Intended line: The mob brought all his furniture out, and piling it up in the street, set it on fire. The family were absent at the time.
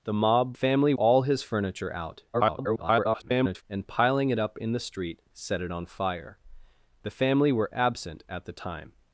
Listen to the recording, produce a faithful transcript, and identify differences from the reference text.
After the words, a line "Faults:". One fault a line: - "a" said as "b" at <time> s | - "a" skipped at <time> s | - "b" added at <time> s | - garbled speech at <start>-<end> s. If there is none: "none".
The mob family all his furniture out, [garbled] and piling it up in the street, set it on fire. The family were absent at the time.
Faults:
- "brought" said as "family" at 0.5 s
- garbled speech at 2.3-3.6 s